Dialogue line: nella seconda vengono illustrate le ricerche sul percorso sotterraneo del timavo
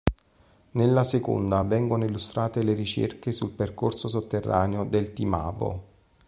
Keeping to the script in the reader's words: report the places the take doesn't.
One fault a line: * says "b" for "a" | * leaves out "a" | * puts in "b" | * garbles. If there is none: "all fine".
all fine